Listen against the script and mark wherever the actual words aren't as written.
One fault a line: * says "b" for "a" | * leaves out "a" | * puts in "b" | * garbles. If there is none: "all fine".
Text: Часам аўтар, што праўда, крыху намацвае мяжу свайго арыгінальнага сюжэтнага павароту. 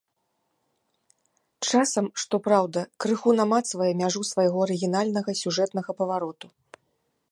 * leaves out "аўтар"